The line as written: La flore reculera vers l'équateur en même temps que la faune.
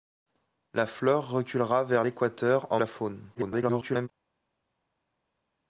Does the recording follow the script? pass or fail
fail